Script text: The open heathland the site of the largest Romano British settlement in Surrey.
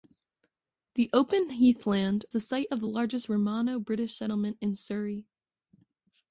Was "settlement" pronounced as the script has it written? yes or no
yes